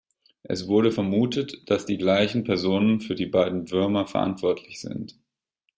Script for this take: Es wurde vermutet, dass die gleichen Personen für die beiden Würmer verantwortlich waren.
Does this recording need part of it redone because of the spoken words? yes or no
yes